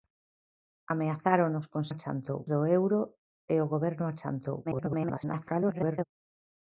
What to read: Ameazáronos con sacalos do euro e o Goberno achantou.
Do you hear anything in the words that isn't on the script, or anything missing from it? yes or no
yes